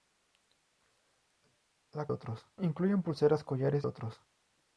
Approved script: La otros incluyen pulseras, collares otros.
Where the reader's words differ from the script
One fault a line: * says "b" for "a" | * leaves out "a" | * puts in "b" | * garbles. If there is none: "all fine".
all fine